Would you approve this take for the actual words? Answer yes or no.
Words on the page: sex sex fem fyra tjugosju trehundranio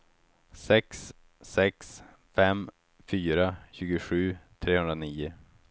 yes